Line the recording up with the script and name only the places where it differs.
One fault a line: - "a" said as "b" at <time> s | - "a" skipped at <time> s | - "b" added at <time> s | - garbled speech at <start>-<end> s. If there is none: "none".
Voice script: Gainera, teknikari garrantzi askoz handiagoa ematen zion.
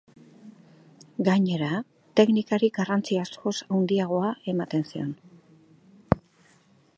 none